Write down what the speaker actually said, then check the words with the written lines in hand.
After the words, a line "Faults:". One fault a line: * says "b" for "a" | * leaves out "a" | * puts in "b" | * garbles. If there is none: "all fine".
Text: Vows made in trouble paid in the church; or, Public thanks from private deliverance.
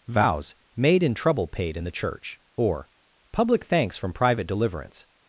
Vows made in trouble paid in the church; or, Public thanks from private deliverance.
Faults:
all fine